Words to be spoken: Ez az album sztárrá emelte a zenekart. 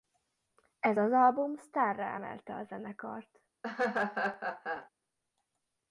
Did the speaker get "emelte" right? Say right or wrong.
right